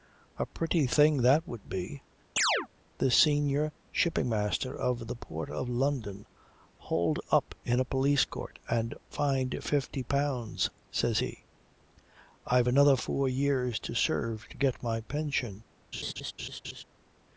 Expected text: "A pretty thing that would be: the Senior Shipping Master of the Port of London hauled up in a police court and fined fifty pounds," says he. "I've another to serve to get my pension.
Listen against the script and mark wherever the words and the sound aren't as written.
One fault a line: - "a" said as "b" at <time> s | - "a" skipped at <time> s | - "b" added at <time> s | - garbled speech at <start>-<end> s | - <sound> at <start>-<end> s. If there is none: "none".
- chirp at 2.4-2.7 s
- "four years" added at 13.0 s
- laugh at 15.9-16.8 s